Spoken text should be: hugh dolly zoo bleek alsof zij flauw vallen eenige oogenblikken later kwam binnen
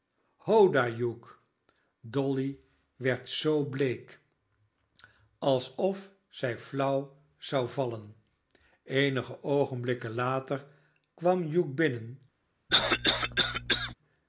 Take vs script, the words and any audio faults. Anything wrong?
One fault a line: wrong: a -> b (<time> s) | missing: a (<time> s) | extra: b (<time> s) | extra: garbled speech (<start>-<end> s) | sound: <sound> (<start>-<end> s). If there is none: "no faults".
extra: werd (3.0 s)
extra: zou (7.4 s)
extra: hugh (11.5 s)
sound: cough (12.7-13.9 s)